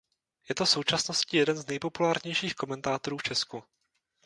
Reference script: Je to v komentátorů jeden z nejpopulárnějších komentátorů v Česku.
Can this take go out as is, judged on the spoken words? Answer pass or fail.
fail